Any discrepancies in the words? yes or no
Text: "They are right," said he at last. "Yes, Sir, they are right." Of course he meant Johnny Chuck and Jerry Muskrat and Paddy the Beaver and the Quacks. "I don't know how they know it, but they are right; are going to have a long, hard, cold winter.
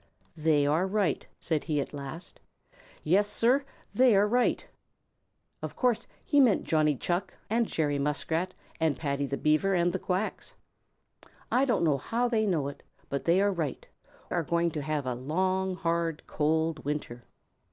no